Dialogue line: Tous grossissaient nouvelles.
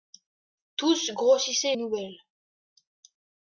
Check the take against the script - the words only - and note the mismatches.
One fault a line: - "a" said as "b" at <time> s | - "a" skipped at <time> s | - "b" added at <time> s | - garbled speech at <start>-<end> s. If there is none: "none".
none